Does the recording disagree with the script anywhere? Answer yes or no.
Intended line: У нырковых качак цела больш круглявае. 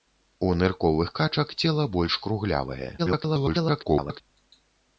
yes